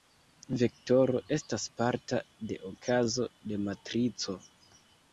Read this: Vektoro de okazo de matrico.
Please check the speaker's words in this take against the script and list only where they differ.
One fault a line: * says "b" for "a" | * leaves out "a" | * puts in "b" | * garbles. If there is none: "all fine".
* puts in "estas parta"